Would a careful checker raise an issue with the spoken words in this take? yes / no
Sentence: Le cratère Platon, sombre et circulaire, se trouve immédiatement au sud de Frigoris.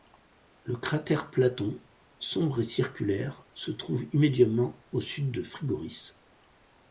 no